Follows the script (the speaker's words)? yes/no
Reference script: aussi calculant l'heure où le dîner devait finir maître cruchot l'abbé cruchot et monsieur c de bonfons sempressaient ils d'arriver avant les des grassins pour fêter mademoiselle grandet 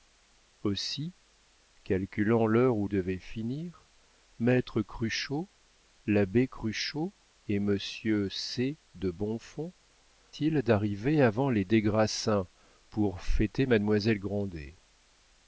no